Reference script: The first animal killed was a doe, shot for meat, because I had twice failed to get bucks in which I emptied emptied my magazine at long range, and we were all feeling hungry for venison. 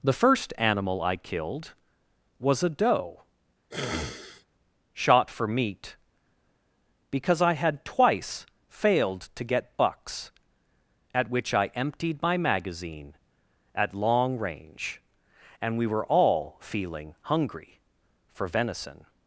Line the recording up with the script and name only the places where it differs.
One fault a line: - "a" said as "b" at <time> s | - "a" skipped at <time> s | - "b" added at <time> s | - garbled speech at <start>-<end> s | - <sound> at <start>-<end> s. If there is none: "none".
- "I" added at 1.0 s
- sniff at 3.7-4.5 s
- "in" said as "at" at 11.1 s
- "emptied" skipped at 12.2 s